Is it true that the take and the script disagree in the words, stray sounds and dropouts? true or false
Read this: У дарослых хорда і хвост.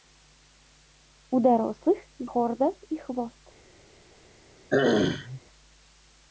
true